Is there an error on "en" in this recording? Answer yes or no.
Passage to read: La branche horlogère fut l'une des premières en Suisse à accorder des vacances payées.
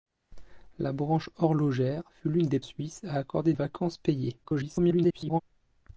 yes